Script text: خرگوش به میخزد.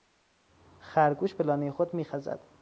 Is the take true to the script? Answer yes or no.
no